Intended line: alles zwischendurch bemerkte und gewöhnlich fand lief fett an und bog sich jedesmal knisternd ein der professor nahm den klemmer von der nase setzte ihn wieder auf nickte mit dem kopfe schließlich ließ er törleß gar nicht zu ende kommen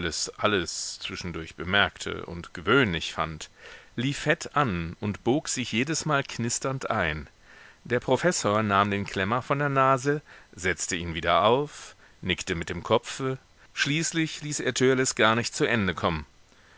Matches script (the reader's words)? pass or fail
pass